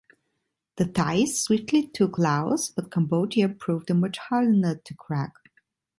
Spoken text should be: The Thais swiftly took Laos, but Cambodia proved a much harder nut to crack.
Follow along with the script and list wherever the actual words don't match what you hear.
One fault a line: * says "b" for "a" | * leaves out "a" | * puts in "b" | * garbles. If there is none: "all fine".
all fine